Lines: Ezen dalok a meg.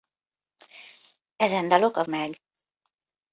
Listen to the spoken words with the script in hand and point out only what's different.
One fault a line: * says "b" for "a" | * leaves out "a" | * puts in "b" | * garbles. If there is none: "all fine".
all fine